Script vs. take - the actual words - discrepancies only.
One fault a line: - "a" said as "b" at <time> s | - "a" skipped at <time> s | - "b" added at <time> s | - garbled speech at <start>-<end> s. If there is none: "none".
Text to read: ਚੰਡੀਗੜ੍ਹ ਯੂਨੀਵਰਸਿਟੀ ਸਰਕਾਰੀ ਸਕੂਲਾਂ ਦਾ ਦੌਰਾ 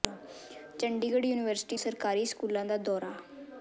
none